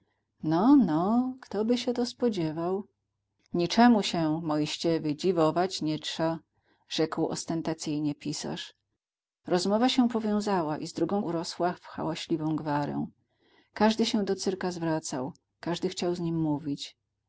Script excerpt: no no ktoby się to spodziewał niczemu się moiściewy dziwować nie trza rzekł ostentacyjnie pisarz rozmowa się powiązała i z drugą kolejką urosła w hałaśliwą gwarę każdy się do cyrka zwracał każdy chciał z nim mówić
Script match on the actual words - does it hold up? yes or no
no